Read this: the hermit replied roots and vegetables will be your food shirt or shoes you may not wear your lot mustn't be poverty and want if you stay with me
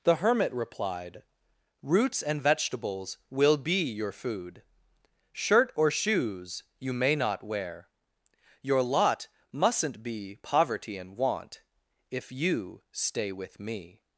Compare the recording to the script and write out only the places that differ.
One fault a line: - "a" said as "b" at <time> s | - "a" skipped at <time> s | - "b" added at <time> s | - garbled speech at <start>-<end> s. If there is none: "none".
none